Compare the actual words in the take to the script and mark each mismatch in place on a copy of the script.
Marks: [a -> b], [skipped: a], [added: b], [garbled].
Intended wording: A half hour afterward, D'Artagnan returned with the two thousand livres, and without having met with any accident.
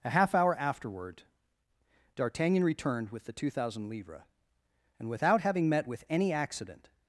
A half hour afterward, D'Artagnan returned with the two thousand livres, and without having met with any accident.